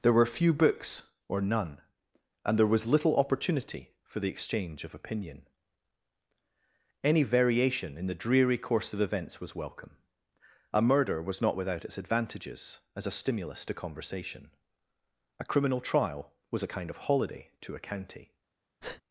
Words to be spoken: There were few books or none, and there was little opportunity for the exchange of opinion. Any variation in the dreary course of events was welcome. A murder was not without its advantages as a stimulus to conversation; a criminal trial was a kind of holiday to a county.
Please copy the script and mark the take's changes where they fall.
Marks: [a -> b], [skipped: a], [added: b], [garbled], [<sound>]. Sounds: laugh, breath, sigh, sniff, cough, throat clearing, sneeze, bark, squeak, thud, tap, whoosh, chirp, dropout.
There were few books or none, and there was little opportunity for the exchange of opinion. Any variation in the dreary course of events was welcome. A murder was not without its advantages as a stimulus to conversation; a criminal trial was a kind of holiday to a county. [breath]